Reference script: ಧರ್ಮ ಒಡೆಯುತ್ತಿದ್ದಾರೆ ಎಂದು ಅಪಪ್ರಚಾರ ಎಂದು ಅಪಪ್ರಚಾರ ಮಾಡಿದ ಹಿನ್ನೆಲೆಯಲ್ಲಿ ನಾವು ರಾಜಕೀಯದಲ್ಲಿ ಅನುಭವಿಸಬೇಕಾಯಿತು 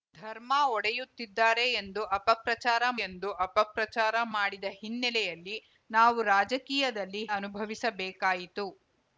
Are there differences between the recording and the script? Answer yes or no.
no